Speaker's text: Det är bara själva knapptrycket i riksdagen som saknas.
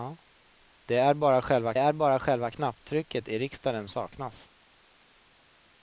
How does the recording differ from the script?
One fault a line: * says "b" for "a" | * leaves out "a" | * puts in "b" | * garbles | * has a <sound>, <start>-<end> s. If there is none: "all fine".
* puts in "är bara själva"
* leaves out "som"